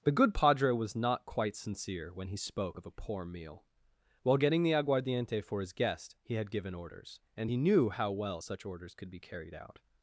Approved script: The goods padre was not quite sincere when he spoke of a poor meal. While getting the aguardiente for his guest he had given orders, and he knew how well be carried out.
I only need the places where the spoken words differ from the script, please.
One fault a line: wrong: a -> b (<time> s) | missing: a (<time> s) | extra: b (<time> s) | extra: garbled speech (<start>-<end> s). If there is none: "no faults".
wrong: goods -> good (0.1 s)
extra: such orders could (8.4 s)